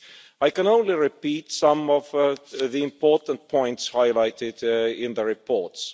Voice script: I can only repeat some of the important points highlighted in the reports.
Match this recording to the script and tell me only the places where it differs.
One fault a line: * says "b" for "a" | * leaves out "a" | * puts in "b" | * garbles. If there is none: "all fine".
all fine